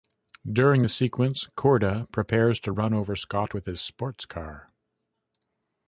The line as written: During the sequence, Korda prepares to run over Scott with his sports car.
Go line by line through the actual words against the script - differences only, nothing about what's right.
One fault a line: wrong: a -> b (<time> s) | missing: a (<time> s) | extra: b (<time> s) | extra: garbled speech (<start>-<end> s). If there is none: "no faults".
no faults